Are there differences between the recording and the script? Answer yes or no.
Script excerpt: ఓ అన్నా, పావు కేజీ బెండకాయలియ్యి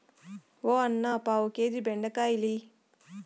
no